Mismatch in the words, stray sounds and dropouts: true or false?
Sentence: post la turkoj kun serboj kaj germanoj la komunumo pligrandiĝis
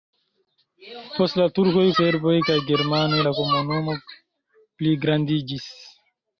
true